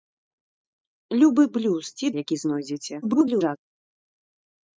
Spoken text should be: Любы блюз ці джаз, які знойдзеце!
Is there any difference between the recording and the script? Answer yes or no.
yes